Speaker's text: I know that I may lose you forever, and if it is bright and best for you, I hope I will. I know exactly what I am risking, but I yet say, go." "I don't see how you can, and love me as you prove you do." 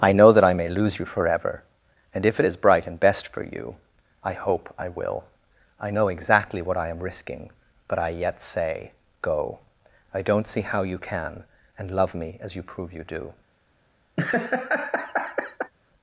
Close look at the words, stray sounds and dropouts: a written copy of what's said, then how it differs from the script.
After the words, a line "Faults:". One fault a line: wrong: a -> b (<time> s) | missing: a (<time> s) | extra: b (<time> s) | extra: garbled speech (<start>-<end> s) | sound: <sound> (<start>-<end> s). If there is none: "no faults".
I know that I may lose you forever, and if it is bright and best for you, I hope I will. I know exactly what I am risking, but I yet say, go." "I don't see how you can, and love me as you prove you do."
Faults:
sound: laugh (14.2-15.7 s)